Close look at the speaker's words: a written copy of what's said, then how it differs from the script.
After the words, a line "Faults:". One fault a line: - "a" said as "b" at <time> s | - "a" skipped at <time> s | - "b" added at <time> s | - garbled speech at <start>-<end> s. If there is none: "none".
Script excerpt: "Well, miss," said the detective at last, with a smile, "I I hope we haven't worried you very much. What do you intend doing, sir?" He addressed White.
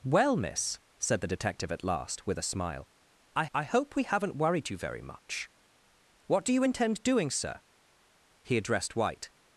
"Well, miss," said the detective at last, with a smile, "I I hope we haven't worried you very much. What do you intend doing, sir?" He addressed White.
Faults:
none